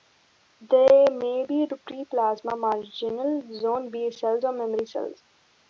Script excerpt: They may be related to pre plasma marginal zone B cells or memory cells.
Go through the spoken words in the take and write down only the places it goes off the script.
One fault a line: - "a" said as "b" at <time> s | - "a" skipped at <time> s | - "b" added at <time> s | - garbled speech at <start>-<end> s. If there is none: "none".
- "related" skipped at 1.7 s